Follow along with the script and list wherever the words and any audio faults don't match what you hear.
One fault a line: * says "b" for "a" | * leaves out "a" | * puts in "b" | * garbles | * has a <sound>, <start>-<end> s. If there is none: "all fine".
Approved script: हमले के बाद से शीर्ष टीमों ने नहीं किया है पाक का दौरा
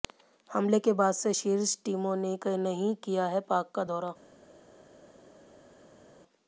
all fine